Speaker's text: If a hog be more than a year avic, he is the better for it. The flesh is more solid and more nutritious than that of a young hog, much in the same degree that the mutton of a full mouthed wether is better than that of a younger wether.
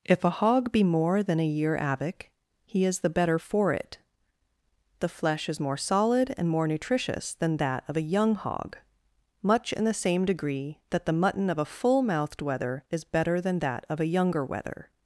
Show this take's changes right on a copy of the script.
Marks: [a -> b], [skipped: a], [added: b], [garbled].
If a hog be more than a year avic, he is the better for it. The flesh is more solid and more nutritious than that of a young hog, much in the same degree that the mutton of a full mouthed wether is better than that of a younger wether.